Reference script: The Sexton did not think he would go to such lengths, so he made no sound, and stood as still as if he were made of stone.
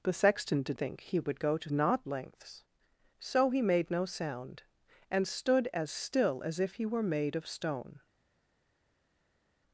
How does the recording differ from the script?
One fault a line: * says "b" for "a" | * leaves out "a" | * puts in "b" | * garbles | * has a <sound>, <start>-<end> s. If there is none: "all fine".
* leaves out "not"
* says "not" for "such"